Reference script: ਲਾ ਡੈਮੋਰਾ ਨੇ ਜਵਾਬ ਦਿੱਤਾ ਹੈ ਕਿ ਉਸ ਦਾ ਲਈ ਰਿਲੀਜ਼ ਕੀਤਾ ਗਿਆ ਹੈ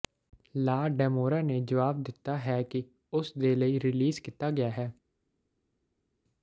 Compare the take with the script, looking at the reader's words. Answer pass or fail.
fail